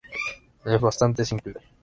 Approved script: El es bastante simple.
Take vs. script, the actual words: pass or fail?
pass